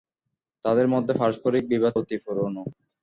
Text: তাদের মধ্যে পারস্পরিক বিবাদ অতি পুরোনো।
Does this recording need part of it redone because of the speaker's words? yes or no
no